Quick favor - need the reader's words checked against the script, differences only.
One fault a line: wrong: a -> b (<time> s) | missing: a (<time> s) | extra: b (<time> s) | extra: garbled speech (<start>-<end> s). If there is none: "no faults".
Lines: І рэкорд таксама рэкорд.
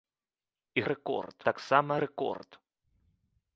no faults